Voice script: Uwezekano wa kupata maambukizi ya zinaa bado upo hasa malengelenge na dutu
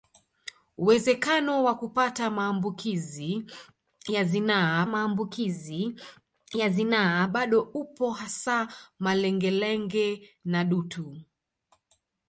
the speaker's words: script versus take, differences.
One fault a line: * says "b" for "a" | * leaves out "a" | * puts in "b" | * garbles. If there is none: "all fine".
* puts in "maambukizi ya zinaa"